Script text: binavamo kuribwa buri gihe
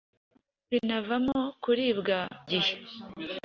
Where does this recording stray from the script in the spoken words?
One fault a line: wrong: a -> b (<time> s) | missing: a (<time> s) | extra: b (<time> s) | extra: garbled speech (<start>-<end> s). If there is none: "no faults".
missing: buri (2.2 s)